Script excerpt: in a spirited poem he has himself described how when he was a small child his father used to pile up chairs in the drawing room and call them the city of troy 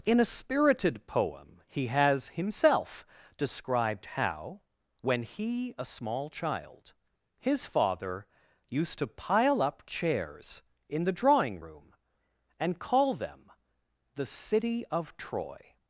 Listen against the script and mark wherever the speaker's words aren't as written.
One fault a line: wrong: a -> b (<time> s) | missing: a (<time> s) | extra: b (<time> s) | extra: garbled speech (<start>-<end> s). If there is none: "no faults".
missing: was (5.8 s)